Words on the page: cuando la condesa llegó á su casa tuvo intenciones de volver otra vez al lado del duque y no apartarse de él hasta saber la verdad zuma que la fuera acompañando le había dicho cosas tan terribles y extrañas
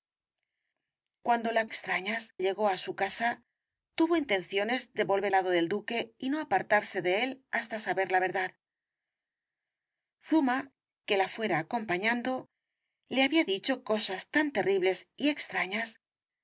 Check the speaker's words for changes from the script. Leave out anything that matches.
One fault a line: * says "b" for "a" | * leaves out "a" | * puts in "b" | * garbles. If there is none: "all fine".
* says "extrañas" for "condesa"
* leaves out "otra vez al"